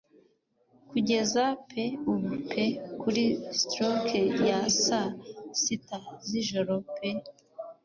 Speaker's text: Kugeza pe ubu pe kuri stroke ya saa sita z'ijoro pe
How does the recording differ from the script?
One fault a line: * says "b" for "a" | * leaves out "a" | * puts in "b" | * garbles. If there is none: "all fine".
all fine